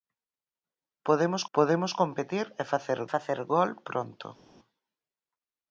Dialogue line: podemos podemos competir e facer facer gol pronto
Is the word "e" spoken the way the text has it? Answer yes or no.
yes